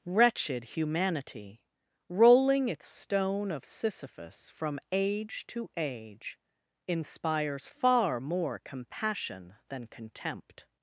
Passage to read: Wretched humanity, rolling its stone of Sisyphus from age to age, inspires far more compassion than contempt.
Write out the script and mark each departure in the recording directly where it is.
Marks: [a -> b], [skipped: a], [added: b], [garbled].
Wretched humanity, rolling its stone of Sisyphus from age to age, inspires far more compassion than contempt.